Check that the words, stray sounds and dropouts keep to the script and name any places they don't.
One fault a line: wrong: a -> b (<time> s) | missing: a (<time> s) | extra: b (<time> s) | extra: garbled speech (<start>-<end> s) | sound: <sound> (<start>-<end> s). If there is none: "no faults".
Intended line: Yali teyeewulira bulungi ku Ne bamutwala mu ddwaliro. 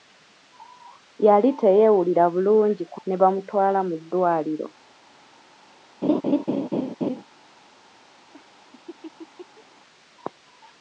sound: laugh (6.0-7.2 s)
sound: laugh (8.3-9.6 s)